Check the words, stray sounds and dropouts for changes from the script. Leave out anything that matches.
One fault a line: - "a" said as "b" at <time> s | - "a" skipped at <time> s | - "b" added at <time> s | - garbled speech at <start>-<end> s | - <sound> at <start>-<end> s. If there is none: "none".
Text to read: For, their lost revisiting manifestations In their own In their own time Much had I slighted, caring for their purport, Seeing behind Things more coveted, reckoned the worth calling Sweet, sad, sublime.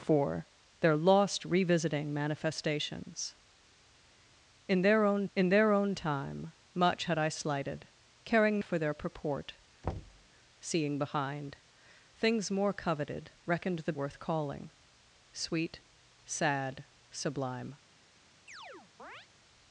- thud at 9.8-10.3 s
- chirp at 18.5-19.3 s